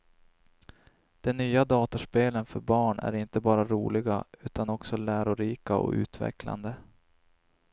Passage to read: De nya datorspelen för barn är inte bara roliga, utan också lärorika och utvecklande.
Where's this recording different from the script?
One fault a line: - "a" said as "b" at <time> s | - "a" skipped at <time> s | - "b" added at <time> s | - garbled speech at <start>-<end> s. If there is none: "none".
none